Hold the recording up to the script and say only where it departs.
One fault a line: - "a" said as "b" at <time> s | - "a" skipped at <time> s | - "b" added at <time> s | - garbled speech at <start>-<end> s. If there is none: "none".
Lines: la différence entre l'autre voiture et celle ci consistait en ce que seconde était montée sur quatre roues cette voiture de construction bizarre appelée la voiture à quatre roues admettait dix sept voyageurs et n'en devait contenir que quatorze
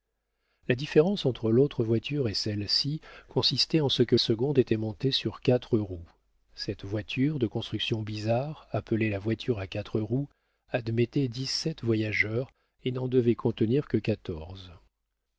none